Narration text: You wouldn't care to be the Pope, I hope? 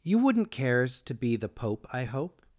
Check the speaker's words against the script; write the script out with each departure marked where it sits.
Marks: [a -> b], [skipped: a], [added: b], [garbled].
You wouldn't [care -> cares] to be the Pope, I hope?